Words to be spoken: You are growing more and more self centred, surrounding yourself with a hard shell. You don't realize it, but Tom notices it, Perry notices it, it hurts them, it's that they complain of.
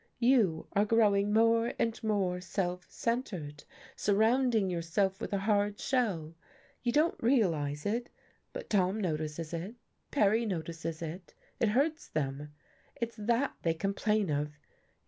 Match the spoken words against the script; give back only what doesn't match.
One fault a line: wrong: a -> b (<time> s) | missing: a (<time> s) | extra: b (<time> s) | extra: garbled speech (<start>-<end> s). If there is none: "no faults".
no faults